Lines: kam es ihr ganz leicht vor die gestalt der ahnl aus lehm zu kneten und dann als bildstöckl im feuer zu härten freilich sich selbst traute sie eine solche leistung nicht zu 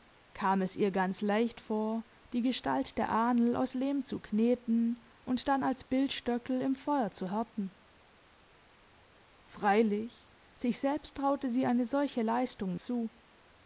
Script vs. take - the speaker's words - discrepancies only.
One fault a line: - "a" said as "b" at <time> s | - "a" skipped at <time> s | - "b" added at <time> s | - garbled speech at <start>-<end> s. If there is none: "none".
- "nicht" skipped at 12.8 s